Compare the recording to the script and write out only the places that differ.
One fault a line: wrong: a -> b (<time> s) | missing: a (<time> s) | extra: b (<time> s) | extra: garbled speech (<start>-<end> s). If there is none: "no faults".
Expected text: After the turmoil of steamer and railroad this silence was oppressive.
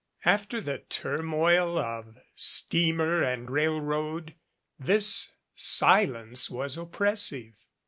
no faults